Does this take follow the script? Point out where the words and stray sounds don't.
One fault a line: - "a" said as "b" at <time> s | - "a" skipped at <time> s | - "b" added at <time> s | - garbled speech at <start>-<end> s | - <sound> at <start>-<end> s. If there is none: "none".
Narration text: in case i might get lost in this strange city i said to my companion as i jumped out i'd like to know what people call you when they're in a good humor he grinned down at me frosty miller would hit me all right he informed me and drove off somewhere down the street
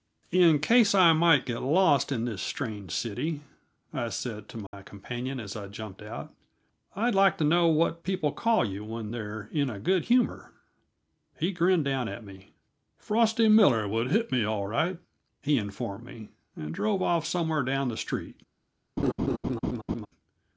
- dropout at 4.7-4.7 s
- laugh at 19.0-20.1 s